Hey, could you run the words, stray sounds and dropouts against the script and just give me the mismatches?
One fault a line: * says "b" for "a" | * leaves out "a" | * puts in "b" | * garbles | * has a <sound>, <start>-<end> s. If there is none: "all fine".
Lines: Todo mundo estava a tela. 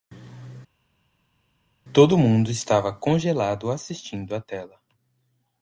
* puts in "congelado assistindo"